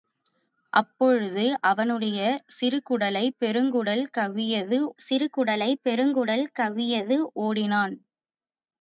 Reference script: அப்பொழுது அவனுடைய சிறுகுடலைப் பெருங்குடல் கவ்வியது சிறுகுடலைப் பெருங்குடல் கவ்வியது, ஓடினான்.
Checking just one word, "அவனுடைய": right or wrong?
right